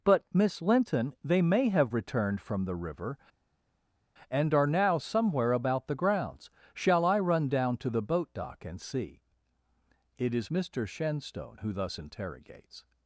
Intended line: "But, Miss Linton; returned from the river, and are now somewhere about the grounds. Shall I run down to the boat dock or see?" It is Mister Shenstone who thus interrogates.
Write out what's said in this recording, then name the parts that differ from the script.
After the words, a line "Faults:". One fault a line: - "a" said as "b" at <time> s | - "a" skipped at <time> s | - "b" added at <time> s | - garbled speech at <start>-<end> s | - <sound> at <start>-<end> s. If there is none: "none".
"But, Miss Linton; they may have returned from the river, and are now somewhere about the grounds. Shall I run down to the boat dock and see?" It is Mister Shenstone who thus interrogates.
Faults:
- "they may have" added at 1.2 s
- "or" said as "and" at 8.7 s